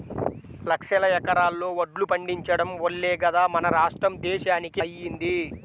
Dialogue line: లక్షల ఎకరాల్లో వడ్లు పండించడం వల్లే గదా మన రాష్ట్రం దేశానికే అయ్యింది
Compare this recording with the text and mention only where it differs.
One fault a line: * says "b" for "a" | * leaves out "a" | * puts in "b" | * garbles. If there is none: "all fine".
all fine